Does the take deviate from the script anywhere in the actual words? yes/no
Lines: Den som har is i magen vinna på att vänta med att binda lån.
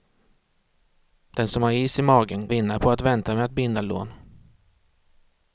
no